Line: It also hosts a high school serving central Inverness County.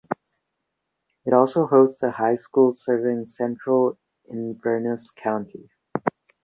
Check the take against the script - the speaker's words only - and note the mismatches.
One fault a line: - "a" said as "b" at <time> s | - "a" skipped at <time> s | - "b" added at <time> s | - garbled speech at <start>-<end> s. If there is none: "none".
none